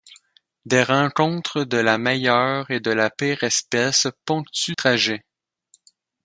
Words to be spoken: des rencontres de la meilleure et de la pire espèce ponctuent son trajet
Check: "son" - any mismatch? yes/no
yes